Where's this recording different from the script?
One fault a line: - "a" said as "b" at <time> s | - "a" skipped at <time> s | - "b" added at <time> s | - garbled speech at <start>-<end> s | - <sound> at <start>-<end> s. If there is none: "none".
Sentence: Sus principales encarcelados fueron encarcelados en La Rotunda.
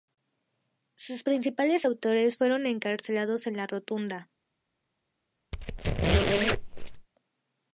- "encarcelados" said as "autores" at 1.8 s
- squeak at 5.5-7.1 s